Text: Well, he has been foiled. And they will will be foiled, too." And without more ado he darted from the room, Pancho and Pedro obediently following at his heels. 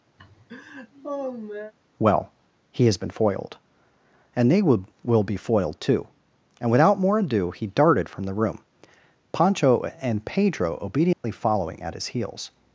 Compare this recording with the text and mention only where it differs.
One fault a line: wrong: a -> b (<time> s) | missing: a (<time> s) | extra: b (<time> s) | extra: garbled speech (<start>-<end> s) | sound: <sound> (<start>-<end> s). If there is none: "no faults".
sound: laugh (0.2-1.7 s)
sound: dropout (11.1-11.2 s)